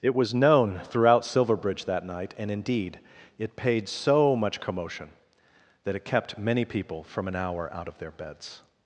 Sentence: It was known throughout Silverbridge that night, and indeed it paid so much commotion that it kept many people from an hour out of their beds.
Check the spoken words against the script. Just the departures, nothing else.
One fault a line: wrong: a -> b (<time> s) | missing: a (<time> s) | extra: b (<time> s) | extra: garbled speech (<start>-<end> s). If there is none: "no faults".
no faults